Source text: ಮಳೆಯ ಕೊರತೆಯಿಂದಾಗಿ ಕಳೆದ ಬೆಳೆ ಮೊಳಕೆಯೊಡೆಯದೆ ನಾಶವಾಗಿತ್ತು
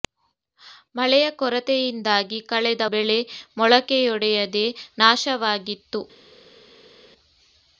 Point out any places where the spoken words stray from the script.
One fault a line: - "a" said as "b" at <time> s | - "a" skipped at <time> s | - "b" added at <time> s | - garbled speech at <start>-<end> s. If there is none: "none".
none